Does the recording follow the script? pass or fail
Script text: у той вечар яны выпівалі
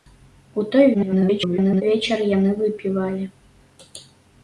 fail